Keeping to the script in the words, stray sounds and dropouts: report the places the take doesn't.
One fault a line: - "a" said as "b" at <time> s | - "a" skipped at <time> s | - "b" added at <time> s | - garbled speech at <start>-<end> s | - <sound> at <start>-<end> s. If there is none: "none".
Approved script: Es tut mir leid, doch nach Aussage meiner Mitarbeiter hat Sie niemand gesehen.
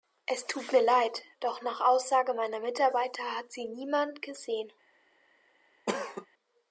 - cough at 5.9-6.3 s